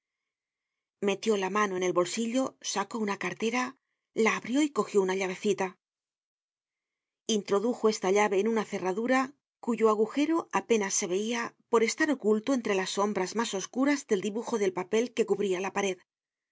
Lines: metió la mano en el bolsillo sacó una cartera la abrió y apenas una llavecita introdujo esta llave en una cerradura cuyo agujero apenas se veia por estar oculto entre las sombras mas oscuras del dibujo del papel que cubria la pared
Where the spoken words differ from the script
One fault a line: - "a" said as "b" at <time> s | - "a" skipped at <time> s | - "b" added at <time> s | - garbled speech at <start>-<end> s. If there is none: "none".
- "apenas" said as "cogió" at 4.7 s